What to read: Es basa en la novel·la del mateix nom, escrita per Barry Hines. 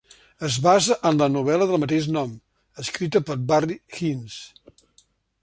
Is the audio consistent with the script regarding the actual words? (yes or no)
yes